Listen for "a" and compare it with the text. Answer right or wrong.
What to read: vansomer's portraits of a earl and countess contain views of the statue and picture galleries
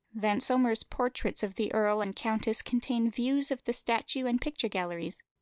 wrong